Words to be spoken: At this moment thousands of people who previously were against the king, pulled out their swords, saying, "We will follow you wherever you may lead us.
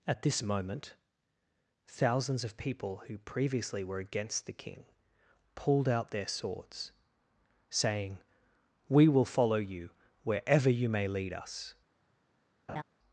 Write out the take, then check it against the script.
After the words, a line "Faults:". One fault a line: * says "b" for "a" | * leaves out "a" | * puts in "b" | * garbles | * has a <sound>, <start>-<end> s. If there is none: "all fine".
At this moment thousands of people who previously were against the king, pulled out their swords, saying, "We will follow you wherever you may lead us.
Faults:
* has a laugh, 12.7-12.8 s